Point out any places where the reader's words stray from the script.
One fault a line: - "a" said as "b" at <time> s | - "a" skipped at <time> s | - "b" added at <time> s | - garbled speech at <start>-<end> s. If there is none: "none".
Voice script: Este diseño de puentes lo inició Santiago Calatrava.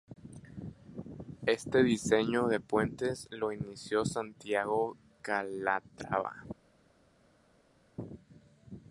none